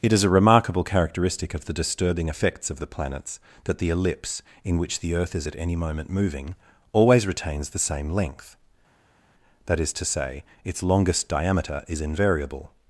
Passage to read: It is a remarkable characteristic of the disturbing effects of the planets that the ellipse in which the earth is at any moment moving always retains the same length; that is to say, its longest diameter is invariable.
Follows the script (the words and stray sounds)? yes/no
yes